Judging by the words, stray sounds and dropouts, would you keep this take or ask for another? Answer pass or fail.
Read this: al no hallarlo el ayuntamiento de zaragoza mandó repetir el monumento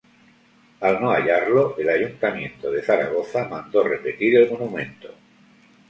pass